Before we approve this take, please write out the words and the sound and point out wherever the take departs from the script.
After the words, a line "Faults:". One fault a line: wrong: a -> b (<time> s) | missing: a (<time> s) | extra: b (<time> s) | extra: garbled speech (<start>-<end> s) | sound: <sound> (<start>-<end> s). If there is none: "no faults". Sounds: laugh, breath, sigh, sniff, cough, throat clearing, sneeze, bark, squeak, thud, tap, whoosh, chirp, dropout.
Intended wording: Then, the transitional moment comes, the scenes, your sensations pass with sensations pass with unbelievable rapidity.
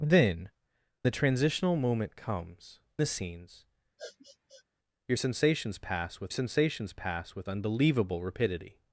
Then, the transitional moment comes, the scenes, your sensations pass with sensations pass with unbelievable rapidity.
Faults:
sound: sniff (4.0-4.6 s)